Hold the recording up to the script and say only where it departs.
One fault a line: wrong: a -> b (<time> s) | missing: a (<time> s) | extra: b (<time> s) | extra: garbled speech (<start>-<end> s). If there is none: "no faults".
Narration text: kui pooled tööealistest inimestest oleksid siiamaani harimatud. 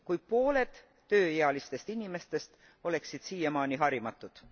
no faults